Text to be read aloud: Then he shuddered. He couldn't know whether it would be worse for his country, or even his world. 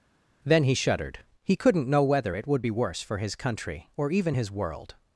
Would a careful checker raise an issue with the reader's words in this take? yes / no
no